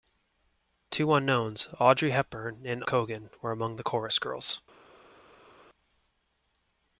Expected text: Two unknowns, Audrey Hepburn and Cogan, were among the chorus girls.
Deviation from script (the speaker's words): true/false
false